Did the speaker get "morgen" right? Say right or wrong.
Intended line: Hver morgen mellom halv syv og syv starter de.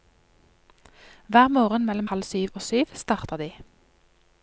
right